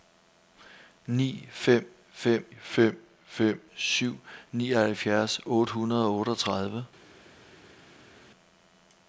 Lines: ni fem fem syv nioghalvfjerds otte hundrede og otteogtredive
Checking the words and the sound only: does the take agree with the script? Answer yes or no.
no